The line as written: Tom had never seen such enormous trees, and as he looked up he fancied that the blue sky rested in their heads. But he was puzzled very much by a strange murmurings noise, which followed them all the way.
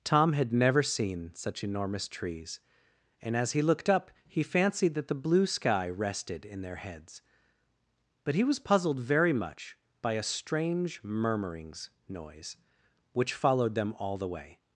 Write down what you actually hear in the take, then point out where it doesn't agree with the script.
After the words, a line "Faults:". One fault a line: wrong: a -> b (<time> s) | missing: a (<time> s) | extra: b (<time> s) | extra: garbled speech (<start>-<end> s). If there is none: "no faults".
Tom had never seen such enormous trees, and as he looked up he fancied that the blue sky rested in their heads. But he was puzzled very much by a strange murmurings noise, which followed them all the way.
Faults:
no faults